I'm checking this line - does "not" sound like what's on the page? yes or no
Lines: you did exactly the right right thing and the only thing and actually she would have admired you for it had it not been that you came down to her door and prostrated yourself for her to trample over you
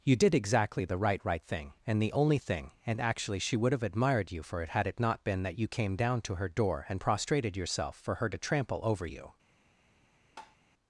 yes